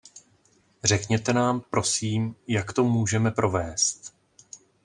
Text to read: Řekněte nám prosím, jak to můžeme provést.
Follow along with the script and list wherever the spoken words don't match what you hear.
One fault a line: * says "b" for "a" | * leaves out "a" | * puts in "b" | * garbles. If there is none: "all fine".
all fine